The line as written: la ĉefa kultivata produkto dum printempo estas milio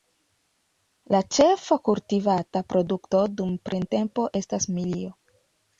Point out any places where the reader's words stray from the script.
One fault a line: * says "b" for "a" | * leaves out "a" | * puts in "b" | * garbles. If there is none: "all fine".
all fine